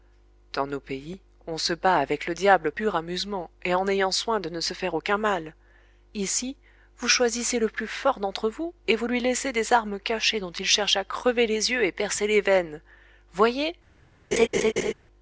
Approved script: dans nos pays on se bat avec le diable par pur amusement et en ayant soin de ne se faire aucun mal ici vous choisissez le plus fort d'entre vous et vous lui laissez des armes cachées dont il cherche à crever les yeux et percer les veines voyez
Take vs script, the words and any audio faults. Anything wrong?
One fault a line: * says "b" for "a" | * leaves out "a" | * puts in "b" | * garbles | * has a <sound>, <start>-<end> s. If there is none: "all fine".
* leaves out "par"
* has a laugh, 14.3-14.9 s